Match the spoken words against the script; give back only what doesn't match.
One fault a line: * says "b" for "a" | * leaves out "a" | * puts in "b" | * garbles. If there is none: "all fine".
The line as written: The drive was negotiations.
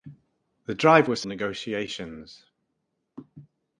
all fine